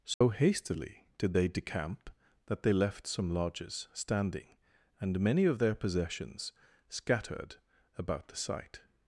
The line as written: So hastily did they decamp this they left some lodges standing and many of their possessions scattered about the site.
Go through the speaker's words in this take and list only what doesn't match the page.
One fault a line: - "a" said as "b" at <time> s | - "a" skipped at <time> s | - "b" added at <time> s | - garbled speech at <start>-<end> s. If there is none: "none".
- "this" said as "that" at 2.5 s